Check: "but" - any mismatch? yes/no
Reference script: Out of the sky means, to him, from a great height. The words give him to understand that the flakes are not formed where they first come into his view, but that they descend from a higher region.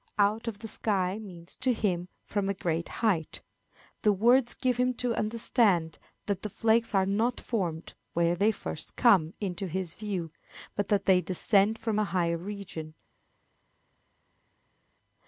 no